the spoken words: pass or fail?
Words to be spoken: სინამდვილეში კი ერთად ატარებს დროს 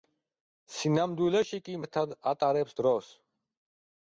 pass